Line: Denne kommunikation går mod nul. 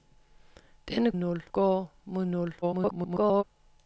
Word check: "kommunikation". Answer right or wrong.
wrong